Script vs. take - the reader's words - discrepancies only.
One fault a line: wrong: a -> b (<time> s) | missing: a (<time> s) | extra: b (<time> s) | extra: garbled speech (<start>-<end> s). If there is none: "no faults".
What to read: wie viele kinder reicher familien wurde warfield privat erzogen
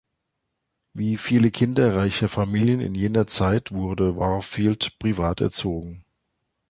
extra: in jener zeit (2.8 s)